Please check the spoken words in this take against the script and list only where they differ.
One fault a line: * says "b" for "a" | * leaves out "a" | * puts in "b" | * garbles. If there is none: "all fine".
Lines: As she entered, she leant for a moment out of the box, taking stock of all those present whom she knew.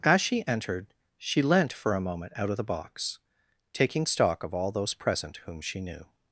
all fine